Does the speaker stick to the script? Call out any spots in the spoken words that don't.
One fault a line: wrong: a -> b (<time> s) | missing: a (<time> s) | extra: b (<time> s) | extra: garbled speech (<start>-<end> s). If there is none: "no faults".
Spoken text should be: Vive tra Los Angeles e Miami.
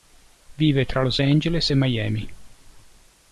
no faults